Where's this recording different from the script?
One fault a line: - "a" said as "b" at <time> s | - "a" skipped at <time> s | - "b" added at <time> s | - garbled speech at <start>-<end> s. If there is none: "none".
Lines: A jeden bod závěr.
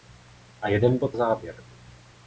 none